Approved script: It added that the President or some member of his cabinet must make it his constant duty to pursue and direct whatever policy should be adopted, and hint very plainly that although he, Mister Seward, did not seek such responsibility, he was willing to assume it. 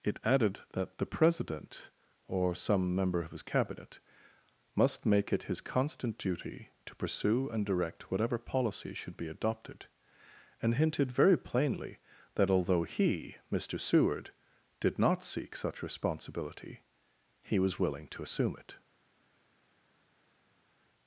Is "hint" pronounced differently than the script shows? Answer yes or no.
yes